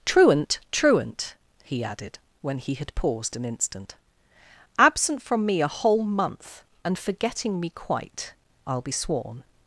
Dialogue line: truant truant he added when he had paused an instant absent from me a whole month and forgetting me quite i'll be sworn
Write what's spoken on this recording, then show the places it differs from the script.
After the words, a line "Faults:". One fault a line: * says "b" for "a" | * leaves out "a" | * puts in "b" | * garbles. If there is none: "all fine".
truant truant he added when he had paused an instant absent from me a whole month and forgetting me quite i'll be sworn
Faults:
all fine